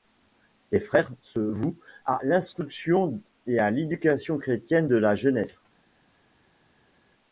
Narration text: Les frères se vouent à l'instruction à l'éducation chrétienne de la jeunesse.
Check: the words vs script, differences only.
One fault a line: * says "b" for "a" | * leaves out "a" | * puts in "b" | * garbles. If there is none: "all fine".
* puts in "et"